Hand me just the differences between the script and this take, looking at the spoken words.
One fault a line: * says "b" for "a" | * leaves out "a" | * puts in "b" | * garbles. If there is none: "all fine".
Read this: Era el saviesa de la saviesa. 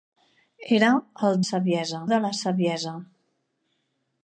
all fine